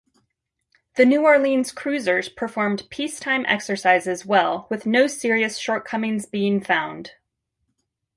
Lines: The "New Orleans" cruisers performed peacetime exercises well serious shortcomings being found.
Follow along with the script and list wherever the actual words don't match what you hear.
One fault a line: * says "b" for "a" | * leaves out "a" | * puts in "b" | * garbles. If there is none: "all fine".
* puts in "with no"